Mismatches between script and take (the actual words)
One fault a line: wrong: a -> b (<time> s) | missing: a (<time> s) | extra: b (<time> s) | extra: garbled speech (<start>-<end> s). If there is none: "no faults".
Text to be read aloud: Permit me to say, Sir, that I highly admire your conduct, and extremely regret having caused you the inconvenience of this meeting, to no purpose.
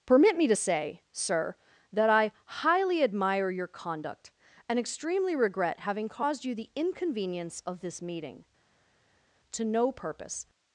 no faults